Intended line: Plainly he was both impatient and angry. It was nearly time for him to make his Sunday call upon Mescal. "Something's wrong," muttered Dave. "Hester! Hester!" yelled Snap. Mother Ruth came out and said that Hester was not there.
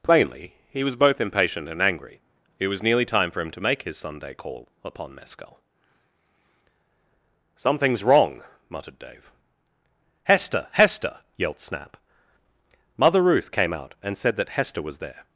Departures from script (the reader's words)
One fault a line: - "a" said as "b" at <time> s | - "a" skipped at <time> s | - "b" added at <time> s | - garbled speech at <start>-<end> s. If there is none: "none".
- "not" skipped at 15.0 s